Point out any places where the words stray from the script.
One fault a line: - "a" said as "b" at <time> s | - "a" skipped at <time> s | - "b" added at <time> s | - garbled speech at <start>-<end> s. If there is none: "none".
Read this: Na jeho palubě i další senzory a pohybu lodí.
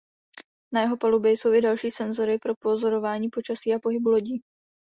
- "jsou" added at 1.3 s
- "pro pozorování počasí" added at 2.4 s